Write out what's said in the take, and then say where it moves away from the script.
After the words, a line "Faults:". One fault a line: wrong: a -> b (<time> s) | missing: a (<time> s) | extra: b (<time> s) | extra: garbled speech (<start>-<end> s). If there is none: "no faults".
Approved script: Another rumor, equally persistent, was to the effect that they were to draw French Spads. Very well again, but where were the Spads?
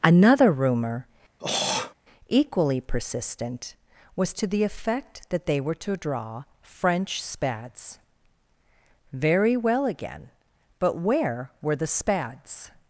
Another rumor, equally persistent, was to the effect that they were to draw French Spads. Very well again, but where were the Spads?
Faults:
no faults